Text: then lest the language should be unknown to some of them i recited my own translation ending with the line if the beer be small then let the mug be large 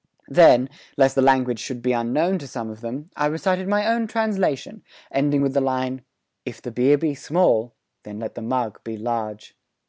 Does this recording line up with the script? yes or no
yes